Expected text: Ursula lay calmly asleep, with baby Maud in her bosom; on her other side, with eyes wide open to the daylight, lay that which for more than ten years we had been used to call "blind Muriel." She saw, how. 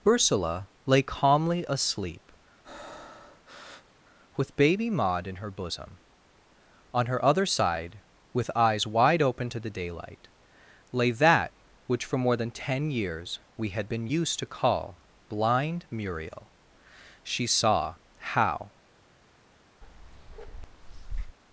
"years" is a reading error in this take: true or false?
false